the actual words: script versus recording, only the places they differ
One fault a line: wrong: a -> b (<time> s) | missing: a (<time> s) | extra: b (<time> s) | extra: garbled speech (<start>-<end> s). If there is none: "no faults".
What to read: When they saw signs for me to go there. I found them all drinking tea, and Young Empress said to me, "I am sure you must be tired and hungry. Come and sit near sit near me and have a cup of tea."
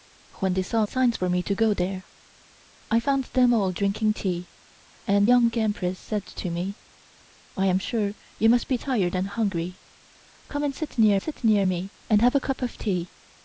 no faults